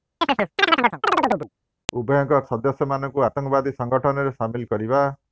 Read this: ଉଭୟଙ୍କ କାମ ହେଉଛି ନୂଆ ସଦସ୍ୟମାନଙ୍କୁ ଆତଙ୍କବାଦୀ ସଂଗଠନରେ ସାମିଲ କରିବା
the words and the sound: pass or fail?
fail